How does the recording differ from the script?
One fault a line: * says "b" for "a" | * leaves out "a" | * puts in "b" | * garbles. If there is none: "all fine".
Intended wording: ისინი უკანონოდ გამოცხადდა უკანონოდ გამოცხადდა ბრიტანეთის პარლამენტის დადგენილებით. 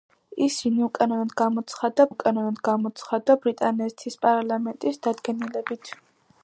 all fine